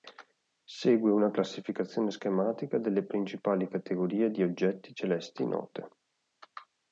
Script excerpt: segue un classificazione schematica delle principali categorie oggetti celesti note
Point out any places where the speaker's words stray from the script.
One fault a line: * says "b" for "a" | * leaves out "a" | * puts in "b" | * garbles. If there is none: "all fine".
* says "una" for "un"
* puts in "di"